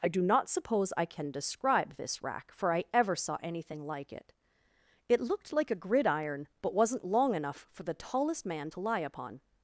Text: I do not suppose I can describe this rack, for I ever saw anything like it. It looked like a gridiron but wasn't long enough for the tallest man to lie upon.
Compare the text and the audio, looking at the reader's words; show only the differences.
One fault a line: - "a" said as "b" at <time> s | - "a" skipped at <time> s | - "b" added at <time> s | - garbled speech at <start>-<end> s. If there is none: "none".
none